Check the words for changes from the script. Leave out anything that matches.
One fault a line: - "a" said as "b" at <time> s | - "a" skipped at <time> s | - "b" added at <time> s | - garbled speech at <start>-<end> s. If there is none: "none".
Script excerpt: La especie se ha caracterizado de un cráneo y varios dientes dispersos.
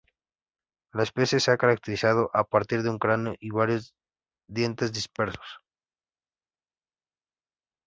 - "a partir" added at 2.3 s